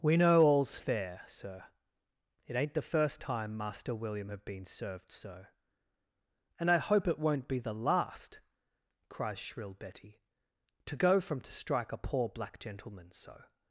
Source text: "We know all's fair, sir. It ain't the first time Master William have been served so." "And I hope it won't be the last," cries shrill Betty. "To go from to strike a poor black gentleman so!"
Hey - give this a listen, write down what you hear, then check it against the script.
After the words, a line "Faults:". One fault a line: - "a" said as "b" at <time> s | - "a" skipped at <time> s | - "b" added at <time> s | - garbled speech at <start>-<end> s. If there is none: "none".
"We know all's fair, sir. It ain't the first time Master William have been served so." "And I hope it won't be the last," cries shrill Betty. "To go from to strike a poor black gentleman so!"
Faults:
none